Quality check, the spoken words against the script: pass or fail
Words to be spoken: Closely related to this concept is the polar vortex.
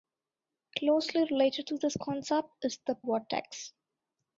fail